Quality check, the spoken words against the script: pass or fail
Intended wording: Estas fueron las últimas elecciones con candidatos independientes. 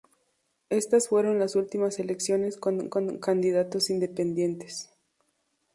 fail